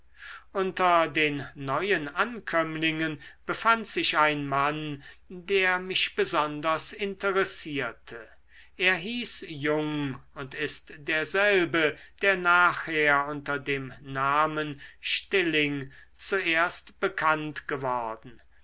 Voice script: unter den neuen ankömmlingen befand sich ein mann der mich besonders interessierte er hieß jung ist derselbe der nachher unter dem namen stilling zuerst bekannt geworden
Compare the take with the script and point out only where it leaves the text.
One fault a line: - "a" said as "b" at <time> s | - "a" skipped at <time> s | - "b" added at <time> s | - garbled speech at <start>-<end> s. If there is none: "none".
- "und" added at 10.3 s